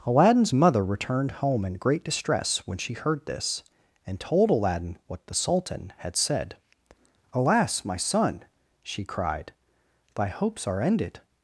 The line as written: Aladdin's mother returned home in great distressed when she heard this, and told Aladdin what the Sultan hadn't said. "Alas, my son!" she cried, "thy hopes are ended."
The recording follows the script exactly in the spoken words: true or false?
false